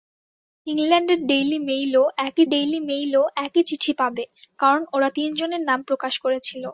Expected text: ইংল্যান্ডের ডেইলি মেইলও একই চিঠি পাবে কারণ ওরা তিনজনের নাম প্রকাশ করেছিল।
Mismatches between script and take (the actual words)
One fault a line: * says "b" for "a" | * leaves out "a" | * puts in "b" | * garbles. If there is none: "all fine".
* puts in "ডেইলি মেইলও একই"